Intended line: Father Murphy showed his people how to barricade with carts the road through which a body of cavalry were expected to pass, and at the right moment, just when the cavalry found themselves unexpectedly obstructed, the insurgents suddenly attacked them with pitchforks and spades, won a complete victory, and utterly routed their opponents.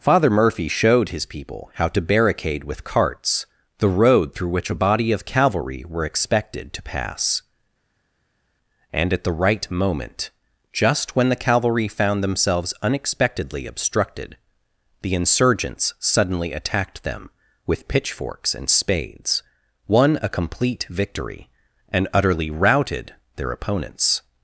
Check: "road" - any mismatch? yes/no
no